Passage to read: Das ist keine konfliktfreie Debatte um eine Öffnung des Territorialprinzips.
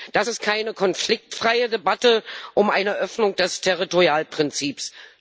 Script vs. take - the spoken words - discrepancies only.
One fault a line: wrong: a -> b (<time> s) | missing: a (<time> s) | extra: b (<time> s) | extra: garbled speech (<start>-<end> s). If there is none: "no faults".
no faults